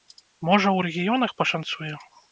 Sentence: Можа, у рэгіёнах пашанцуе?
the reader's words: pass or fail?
pass